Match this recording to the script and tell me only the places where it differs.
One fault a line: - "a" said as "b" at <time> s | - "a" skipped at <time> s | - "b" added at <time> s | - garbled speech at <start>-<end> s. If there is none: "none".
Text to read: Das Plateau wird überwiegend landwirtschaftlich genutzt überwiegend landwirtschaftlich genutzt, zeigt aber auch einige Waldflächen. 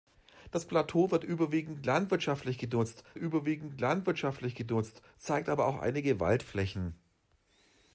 none